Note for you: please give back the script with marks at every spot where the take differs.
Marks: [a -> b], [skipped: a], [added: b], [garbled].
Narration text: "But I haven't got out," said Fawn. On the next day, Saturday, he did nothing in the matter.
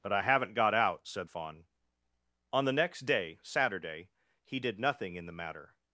"But I haven't got out," said Fawn. On the next day, Saturday, he did nothing in the matter.